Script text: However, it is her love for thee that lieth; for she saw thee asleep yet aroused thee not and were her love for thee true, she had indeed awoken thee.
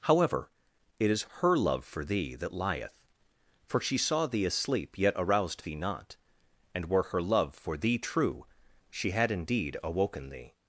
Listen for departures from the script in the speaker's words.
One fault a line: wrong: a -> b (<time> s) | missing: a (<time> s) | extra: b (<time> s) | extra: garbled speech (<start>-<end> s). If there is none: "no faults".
no faults